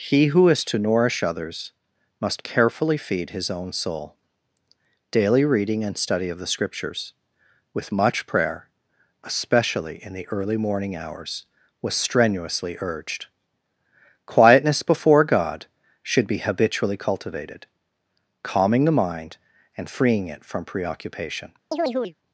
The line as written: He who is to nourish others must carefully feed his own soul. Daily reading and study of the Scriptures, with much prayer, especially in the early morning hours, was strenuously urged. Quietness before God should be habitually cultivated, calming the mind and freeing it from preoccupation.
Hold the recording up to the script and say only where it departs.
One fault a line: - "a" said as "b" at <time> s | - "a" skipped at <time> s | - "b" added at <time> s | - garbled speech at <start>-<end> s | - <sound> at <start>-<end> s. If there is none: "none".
- chirp at 21.7-22.2 s